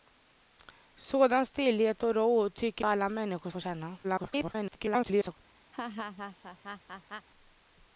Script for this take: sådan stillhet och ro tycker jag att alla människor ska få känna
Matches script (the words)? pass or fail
fail